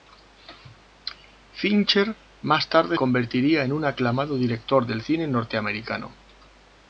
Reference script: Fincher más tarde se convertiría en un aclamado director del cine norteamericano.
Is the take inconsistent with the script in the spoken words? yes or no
yes